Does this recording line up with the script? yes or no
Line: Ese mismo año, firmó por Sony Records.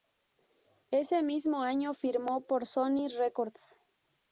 yes